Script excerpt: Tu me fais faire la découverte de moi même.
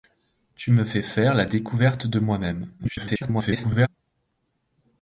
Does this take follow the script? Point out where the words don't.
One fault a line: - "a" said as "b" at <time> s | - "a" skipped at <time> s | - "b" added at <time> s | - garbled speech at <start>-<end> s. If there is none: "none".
- garbled speech at 2.8-3.9 s